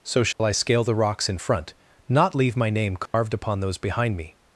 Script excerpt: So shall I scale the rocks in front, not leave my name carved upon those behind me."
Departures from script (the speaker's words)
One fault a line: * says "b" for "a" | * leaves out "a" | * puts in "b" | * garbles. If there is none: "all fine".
all fine